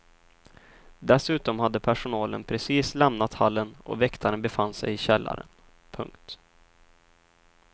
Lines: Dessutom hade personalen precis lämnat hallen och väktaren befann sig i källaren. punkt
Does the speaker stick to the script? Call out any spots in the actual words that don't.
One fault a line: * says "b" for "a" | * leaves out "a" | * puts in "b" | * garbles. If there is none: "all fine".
all fine